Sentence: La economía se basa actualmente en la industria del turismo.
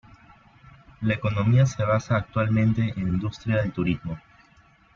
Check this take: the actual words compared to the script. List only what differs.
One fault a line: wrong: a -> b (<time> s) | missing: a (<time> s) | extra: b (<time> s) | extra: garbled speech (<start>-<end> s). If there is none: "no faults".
missing: la (3.1 s)